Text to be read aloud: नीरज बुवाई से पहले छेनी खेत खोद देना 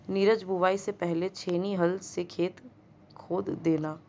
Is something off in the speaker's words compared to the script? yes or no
yes